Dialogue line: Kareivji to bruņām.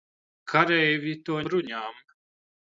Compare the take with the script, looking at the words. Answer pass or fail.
pass